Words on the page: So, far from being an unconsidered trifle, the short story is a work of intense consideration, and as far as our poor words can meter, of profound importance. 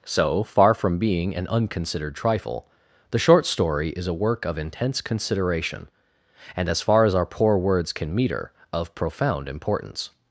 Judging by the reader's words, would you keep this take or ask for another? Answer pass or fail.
pass